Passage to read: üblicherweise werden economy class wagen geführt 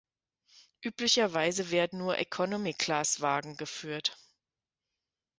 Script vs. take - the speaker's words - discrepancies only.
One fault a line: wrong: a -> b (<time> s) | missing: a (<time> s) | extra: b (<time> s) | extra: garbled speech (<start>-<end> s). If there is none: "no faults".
extra: nur (2.0 s)